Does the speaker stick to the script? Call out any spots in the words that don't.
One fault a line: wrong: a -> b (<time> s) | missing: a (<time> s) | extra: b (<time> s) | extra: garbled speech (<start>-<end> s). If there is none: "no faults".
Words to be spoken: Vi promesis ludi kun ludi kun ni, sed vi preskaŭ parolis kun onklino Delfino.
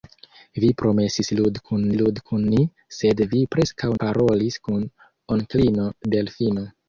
no faults